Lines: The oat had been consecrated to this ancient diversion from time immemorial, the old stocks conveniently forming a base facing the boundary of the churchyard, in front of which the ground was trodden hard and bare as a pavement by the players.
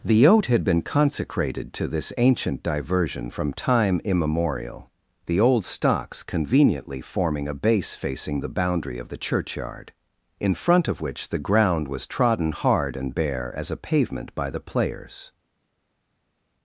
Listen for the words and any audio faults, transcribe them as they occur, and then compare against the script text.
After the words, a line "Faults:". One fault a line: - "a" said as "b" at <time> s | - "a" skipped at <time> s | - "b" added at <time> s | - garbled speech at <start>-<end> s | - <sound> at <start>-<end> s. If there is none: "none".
The oat had been consecrated to this ancient diversion from time immemorial, the old stocks conveniently forming a base facing the boundary of the churchyard, in front of which the ground was trodden hard and bare as a pavement by the players.
Faults:
none